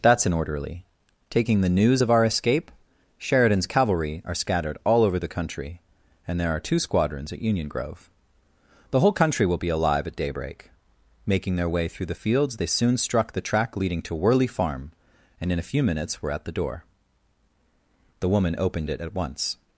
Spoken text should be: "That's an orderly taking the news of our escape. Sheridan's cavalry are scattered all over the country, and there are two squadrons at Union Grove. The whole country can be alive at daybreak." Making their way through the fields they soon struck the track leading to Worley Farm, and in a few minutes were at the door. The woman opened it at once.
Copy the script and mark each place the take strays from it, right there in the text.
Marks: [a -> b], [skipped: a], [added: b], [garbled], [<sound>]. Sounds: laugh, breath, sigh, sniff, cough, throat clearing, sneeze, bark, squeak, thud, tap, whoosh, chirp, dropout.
"That's an orderly taking the news of our escape. Sheridan's cavalry are scattered all over the country, and there are two squadrons at Union Grove. The whole country [can -> will] be alive at daybreak." Making their way through the fields they soon struck the track leading to Worley Farm, and in a few minutes were at the door. The woman opened it at once.